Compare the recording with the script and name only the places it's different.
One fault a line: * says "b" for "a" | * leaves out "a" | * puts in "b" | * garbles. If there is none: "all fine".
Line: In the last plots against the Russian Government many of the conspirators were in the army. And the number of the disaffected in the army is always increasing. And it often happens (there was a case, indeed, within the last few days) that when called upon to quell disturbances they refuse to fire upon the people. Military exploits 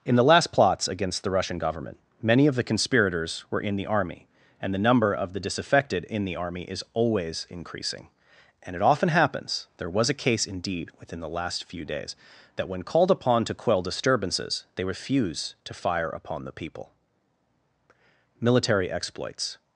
all fine